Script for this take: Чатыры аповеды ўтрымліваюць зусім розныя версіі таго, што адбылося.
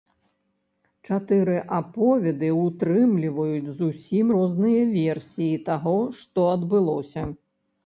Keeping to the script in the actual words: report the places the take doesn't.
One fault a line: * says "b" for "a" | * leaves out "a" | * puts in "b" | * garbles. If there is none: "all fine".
all fine